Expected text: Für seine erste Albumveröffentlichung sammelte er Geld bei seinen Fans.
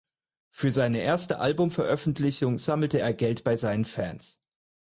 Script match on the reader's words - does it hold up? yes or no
yes